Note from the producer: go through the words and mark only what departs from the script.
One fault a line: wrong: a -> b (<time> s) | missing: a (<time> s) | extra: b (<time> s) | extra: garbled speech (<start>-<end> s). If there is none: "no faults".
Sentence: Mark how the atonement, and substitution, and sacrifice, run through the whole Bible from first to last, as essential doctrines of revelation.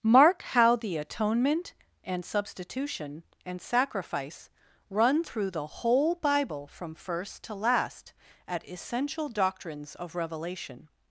wrong: as -> at (8.5 s)